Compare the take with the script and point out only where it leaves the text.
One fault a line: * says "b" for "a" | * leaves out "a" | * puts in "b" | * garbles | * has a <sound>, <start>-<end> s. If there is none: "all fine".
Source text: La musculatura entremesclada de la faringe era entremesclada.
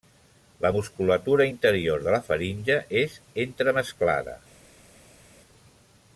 * says "interior" for "entremesclada"
* says "és" for "era"